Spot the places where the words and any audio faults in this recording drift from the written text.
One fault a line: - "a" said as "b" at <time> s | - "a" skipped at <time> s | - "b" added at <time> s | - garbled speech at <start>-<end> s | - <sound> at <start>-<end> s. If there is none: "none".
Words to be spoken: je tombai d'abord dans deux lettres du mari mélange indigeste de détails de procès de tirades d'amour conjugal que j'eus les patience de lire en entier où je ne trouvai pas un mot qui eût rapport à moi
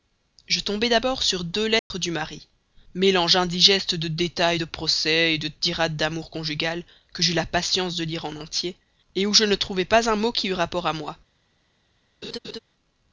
- "dans" said as "sur" at 1.2 s
- dropout at 1.8-1.9 s
- "les" said as "la" at 7.3 s
- laugh at 12.2-12.6 s